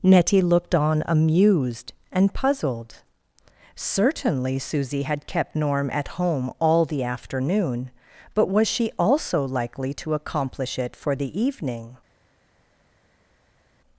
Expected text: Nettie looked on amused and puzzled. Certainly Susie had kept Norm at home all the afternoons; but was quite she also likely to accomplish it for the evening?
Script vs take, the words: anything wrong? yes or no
yes